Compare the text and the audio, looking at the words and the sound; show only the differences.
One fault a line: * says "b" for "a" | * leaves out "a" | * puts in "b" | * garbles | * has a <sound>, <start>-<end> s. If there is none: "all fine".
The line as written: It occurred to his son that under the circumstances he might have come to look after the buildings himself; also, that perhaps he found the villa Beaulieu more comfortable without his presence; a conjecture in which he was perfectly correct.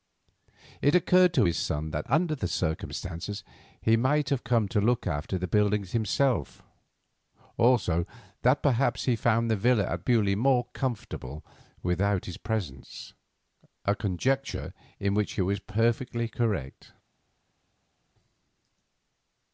* puts in "at"